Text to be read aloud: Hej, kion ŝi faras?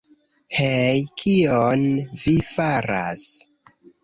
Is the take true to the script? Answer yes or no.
no